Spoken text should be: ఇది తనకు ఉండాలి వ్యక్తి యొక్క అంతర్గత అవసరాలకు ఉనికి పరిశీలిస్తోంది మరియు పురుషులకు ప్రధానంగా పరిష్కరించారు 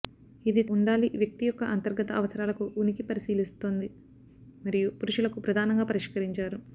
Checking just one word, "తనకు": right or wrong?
wrong